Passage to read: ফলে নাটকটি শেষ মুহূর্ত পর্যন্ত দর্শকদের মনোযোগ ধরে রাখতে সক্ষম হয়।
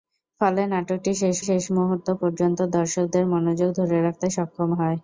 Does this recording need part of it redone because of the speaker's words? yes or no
yes